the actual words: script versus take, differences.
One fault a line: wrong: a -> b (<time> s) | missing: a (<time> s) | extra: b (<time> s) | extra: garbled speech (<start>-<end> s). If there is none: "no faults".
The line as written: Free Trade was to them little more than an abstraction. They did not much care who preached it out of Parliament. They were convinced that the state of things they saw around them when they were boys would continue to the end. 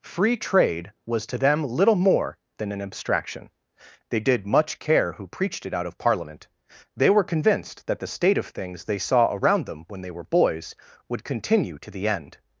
missing: not (4.5 s)